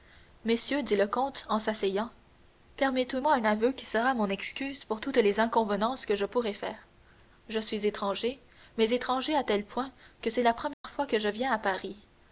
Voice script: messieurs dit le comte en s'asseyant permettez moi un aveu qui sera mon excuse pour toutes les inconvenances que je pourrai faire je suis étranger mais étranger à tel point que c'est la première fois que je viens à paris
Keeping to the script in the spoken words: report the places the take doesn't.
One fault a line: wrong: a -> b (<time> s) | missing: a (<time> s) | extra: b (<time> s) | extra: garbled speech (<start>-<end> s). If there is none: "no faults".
no faults